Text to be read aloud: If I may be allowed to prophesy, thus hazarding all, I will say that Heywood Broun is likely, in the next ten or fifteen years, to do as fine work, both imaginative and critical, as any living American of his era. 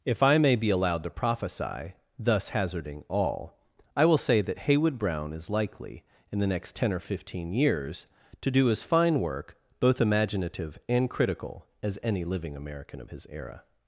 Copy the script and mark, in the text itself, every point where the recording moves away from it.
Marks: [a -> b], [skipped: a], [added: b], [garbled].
If I may be allowed to prophesy, thus hazarding all, I will say that Heywood Broun is likely, in the next ten or fifteen years, to do as fine work, both imaginative and critical, as any living American of his era.